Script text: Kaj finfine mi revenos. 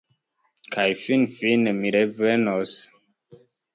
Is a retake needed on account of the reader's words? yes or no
no